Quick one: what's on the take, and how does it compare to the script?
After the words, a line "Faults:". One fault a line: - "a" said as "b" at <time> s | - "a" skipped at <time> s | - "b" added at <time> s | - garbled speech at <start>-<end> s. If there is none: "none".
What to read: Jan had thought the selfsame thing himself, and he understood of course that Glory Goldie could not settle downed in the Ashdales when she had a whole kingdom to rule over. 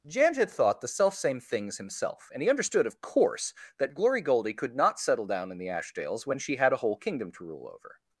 Jan had thought the selfsame things himself, and he understood of course that Glory Goldie could not settle down in the Ashdales when she had a whole kingdom to rule over.
Faults:
- "thing" said as "things" at 1.4 s
- "downed" said as "down" at 5.3 s